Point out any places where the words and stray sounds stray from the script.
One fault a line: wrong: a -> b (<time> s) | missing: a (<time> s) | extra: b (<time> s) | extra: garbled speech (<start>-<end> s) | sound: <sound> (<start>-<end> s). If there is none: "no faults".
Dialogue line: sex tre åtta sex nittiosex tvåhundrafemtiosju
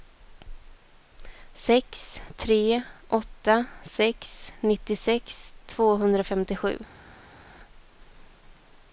no faults